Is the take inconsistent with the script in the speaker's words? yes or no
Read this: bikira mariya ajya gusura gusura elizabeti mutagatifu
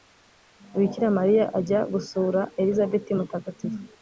yes